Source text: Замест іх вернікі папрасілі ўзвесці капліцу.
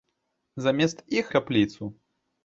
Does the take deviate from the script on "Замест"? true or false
false